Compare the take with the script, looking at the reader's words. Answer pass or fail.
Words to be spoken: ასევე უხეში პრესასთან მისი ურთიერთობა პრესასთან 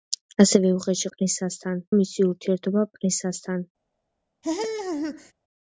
pass